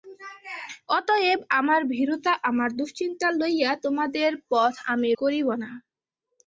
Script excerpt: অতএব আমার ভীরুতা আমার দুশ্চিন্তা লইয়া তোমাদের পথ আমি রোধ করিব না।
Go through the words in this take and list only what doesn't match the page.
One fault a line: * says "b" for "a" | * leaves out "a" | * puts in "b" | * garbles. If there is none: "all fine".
* leaves out "রোধ"